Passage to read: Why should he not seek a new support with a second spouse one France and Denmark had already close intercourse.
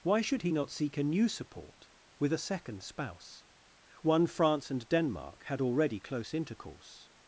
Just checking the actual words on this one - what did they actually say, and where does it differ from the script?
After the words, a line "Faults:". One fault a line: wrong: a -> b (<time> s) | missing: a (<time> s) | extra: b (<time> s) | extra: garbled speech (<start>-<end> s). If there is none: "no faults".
Why should he not seek a new support with a second spouse one France and Denmark had already close intercourse.
Faults:
no faults